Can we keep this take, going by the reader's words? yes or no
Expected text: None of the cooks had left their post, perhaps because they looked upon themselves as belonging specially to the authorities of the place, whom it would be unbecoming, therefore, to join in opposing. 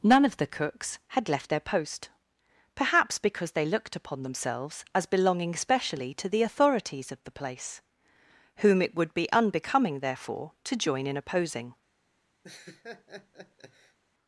yes